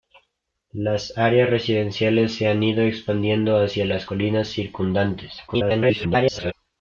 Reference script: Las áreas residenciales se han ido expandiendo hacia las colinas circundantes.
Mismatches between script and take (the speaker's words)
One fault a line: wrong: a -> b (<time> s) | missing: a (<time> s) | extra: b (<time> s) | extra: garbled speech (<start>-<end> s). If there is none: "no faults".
extra: garbled speech (5.5-6.5 s)